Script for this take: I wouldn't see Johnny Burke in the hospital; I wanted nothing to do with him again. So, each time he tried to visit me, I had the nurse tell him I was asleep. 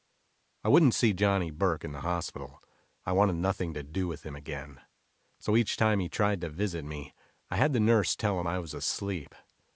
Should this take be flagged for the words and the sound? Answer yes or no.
no